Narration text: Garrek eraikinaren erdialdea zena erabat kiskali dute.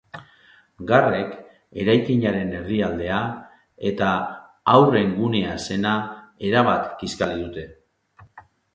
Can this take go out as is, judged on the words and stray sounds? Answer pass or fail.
fail